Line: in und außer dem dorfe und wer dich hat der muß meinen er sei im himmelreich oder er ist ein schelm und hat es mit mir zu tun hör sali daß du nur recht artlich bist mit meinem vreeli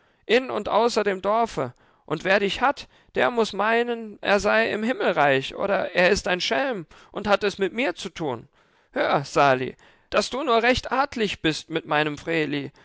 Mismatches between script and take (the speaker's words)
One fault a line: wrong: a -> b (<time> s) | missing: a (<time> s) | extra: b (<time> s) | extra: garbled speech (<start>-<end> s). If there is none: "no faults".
no faults